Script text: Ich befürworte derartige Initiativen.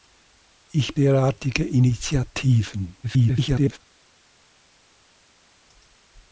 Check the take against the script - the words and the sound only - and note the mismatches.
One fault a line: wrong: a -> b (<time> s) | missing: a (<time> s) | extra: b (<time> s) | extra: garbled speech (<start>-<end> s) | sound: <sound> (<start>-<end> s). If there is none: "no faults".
missing: befürworte (0.9 s)
extra: garbled speech (3.0-3.8 s)